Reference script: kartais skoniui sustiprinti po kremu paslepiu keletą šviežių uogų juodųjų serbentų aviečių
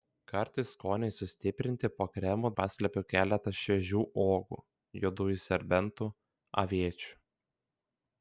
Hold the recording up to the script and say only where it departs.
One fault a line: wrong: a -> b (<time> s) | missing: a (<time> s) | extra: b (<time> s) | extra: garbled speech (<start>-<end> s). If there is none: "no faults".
no faults